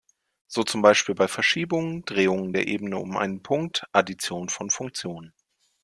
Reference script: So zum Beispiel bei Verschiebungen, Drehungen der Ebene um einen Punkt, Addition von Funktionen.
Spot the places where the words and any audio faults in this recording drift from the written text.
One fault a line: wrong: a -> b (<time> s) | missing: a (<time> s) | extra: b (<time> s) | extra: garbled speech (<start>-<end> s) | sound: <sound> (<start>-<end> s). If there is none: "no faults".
no faults